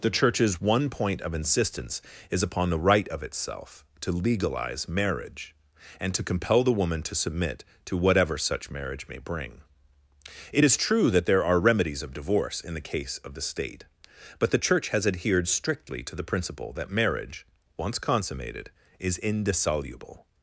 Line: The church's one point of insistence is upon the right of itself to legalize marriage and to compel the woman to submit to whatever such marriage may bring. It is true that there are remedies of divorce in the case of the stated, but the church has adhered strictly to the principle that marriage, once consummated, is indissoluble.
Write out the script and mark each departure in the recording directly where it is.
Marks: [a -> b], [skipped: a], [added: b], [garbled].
The church's one point of insistence is upon the right of itself to legalize marriage and to compel the woman to submit to whatever such marriage may bring. It is true that there are remedies of divorce in the case of the [stated, -> state] but the church has adhered strictly to the principle that marriage, once consummated, is indissoluble.